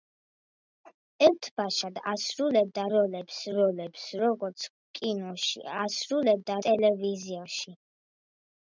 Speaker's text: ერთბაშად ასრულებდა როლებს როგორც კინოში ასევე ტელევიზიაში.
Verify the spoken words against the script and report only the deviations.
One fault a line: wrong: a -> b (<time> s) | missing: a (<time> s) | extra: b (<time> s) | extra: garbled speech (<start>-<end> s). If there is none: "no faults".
extra: როლებს (3.6 s)
wrong: ასევე -> ასრულებდა (5.8 s)